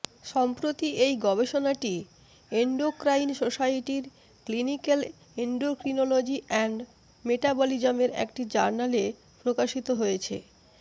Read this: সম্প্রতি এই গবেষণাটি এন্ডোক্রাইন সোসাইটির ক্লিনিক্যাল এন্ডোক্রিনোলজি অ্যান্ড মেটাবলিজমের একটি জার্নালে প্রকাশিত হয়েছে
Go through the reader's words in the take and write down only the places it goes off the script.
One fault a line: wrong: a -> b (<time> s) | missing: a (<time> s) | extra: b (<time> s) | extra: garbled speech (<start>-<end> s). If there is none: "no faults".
no faults